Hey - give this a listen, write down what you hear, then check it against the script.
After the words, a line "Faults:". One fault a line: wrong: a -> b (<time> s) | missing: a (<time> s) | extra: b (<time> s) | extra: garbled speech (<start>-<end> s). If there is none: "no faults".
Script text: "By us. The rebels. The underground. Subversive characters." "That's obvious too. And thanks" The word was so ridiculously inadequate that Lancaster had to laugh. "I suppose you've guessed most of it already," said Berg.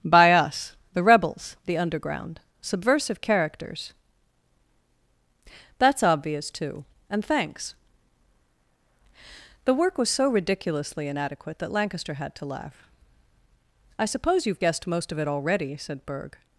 "By us. The rebels. The underground. Subversive characters." "That's obvious too. And thanks" The work was so ridiculously inadequate that Lancaster had to laugh. "I suppose you've guessed most of it already," said Berg.
Faults:
wrong: word -> work (9.7 s)